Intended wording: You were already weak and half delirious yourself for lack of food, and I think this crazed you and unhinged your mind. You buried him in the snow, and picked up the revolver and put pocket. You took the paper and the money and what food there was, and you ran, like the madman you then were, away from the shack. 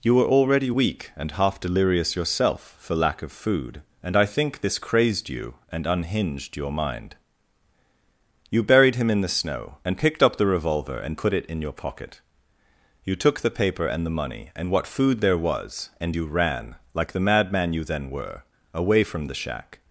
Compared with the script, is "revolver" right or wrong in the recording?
right